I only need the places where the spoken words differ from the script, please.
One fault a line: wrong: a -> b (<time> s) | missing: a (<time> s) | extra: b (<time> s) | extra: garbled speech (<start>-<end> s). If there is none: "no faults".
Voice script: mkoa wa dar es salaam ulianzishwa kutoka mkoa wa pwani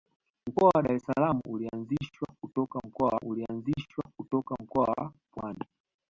extra: ulianzishwa kutoka mkoa (3.2 s)